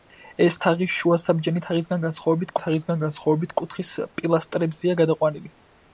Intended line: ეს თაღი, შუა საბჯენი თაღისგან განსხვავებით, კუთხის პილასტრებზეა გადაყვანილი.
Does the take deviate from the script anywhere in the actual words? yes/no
yes